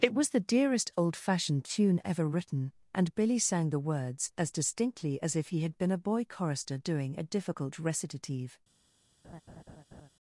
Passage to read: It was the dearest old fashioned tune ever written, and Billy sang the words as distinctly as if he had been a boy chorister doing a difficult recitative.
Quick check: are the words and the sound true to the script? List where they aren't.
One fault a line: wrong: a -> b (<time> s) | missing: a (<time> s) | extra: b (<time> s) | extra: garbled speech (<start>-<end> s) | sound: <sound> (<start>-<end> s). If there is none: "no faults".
sound: laugh (9.2-10.1 s)